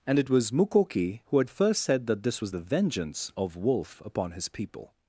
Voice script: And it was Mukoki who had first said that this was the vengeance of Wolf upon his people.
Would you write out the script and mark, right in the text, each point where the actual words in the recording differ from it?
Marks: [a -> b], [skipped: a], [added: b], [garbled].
And it was Mukoki who had first said that this was the vengeance of Wolf upon his people.